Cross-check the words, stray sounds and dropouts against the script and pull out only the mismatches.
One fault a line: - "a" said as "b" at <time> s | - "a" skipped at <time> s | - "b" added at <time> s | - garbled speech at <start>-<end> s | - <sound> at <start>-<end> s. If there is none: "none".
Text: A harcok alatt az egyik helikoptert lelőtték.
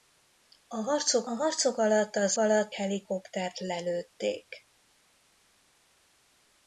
- "harcok" added at 1.3 s
- "egyik" said as "alatt" at 2.4 s